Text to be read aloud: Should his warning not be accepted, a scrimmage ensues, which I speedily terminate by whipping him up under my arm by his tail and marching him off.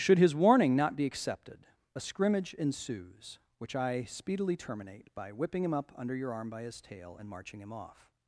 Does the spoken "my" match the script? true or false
false